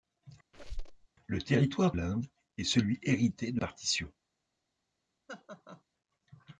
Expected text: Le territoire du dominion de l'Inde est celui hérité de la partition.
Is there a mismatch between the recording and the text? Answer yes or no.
yes